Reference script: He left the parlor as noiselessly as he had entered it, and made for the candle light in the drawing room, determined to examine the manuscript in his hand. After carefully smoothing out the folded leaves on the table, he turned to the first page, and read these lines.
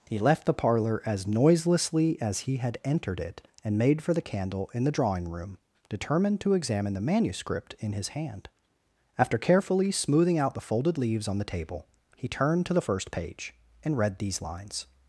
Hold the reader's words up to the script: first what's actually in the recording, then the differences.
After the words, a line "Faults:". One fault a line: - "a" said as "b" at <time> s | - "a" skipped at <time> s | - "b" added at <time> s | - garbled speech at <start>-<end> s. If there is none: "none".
He left the parlor as noiselessly as he had entered it, and made for the candle in the drawing room, determined to examine the manuscript in his hand. After carefully smoothing out the folded leaves on the table, he turned to the first page, and read these lines.
Faults:
- "light" skipped at 4.7 s